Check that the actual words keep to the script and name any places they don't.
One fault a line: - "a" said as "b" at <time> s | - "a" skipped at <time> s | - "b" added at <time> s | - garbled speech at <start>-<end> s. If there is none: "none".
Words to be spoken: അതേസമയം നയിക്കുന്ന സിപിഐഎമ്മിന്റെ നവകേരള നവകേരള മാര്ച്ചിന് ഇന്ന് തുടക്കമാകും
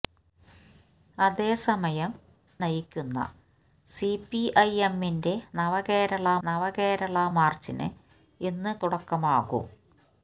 none